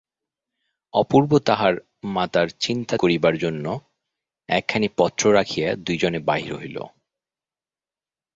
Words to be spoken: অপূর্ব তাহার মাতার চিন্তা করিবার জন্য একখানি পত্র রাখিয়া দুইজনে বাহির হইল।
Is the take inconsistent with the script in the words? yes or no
no